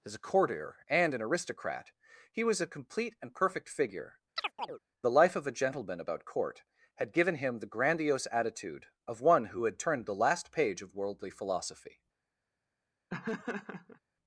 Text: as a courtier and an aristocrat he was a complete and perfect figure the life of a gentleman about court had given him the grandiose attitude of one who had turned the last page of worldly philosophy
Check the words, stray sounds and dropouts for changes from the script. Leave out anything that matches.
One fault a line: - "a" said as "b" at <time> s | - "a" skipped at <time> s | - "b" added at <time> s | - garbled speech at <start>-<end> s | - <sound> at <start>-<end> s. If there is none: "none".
- chirp at 4.4-4.8 s
- laugh at 13.1-14.0 s